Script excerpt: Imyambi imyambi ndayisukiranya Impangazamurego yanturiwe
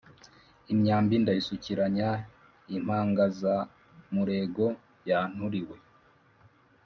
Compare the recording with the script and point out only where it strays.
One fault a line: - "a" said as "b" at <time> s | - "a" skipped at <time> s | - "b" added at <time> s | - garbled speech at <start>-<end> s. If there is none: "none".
- "imyambi" skipped at 1.1 s